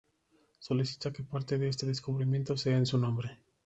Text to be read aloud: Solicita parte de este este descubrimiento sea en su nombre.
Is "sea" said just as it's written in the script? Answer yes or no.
yes